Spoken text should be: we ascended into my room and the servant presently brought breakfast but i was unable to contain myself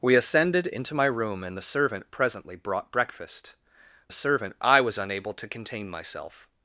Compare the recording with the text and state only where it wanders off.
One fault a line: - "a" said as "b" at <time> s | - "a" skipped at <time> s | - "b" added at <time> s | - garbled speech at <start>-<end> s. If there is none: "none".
- "but" said as "servant" at 4.1 s